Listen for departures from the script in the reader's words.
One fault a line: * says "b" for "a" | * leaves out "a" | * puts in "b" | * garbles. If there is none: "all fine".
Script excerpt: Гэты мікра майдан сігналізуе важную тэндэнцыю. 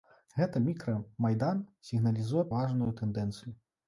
all fine